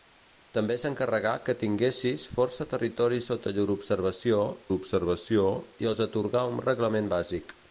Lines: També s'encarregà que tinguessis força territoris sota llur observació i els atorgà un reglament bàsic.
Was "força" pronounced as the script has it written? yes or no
yes